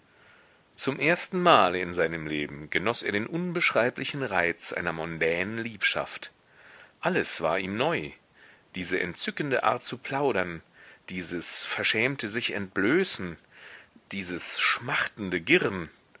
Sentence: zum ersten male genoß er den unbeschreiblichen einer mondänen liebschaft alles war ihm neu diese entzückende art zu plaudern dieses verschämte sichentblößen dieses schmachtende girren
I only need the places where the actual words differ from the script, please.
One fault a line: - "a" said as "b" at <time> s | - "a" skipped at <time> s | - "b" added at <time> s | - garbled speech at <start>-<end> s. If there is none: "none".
- "in seinem leben" added at 1.8 s
- "reiz" added at 4.2 s